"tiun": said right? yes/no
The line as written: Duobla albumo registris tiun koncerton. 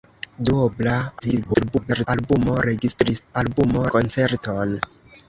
no